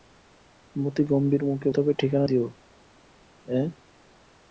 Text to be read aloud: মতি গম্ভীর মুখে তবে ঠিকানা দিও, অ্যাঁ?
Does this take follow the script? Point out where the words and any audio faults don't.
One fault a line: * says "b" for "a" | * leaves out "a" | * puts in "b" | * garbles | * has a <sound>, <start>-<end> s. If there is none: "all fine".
all fine